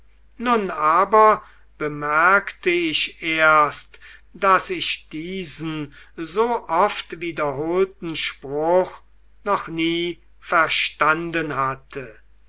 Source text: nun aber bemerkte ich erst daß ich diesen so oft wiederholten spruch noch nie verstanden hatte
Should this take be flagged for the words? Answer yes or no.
no